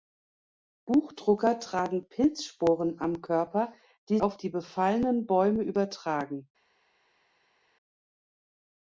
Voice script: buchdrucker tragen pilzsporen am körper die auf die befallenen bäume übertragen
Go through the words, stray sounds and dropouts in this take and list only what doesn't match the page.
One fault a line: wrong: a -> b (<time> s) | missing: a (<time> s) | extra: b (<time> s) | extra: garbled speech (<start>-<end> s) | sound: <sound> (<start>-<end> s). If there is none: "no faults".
no faults